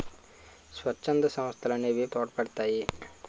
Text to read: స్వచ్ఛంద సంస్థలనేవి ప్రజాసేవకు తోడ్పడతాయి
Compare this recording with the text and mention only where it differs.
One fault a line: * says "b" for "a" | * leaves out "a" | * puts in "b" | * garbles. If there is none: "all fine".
* leaves out "ప్రజాసేవకు"